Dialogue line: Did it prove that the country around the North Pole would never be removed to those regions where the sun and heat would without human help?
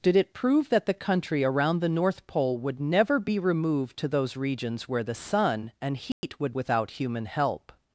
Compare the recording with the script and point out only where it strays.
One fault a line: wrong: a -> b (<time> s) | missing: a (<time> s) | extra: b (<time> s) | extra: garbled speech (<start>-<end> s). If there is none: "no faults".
no faults